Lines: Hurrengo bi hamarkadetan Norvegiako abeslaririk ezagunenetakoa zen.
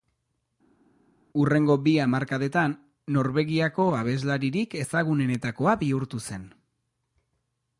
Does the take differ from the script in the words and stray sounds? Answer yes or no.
yes